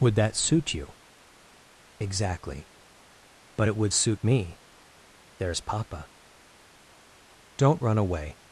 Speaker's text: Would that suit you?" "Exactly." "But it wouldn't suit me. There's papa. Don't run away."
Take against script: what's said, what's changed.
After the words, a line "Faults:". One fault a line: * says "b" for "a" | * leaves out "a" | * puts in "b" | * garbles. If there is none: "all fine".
Would that suit you?" "Exactly." "But it would suit me. There's papa. Don't run away."
Faults:
* says "would" for "wouldn't"